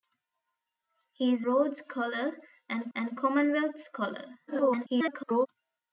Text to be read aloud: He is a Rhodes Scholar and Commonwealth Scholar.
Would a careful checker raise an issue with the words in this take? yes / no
yes